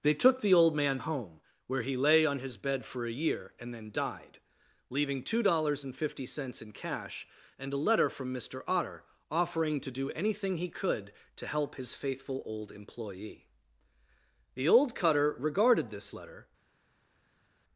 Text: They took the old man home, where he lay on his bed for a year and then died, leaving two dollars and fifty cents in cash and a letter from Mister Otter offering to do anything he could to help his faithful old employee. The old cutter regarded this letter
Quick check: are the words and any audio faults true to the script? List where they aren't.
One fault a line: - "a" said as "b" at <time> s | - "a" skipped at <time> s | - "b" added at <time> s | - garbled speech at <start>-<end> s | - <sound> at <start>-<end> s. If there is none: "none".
none